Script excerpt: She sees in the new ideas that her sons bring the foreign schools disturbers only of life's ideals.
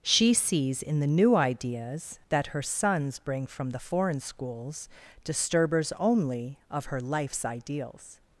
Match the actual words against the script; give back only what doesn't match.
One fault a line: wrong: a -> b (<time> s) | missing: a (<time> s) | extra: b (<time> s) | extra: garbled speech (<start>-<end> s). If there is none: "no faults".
extra: from (3.5 s)
extra: her (6.9 s)